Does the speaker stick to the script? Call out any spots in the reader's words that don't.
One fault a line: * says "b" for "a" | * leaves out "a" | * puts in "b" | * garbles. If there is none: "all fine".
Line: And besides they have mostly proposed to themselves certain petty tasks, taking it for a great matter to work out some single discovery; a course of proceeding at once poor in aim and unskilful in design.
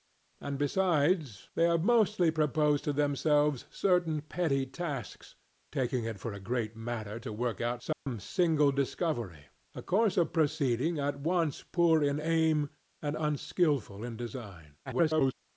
* garbles